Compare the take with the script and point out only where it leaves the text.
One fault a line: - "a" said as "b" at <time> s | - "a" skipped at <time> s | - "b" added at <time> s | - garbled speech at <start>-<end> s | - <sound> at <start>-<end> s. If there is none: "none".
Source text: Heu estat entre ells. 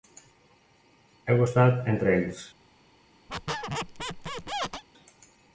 - squeak at 3.3-4.8 s